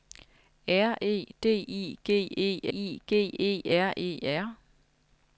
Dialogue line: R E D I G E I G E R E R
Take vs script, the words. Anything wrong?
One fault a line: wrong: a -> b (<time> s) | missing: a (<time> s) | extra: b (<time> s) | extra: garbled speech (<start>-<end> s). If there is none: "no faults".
no faults